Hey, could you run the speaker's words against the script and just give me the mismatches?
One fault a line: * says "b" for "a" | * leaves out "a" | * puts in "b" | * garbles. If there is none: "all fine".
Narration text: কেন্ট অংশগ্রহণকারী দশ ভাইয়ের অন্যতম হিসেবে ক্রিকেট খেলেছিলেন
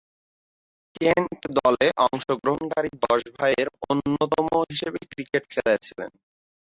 * puts in "দলে"